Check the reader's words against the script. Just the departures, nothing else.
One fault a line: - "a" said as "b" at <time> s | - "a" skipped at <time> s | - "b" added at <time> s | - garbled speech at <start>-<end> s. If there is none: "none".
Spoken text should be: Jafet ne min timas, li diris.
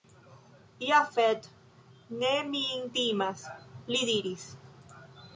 none